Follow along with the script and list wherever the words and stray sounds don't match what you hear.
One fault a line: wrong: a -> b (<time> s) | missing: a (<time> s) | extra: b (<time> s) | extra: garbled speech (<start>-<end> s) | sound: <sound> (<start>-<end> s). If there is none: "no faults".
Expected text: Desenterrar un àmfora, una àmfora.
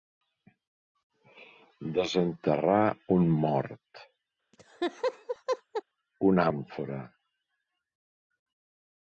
wrong: àmfora -> mort (3.4 s)
sound: laugh (4.5-5.8 s)